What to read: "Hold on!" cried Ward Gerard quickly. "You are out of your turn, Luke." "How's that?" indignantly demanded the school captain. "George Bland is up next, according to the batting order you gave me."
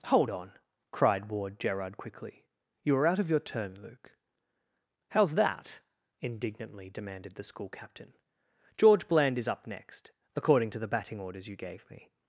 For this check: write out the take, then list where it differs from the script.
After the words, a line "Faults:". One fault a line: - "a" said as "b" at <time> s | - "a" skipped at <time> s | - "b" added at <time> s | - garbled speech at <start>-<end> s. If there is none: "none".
"Hold on!" cried Ward Gerard quickly. "You are out of your turn, Luke." "How's that?" indignantly demanded the school captain. "George Bland is up next, according to the batting orders you gave me."
Faults:
- "order" said as "orders" at 11.2 s